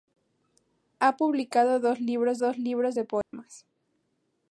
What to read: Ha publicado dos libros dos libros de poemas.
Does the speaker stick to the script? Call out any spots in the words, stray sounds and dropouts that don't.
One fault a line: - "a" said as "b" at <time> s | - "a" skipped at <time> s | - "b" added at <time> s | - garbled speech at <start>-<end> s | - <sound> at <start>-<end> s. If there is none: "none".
- dropout at 3.2-3.3 s